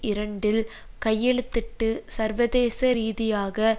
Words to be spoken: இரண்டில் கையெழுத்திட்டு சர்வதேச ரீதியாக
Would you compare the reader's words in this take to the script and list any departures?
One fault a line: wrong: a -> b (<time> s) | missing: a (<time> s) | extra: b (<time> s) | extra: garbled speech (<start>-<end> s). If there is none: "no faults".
no faults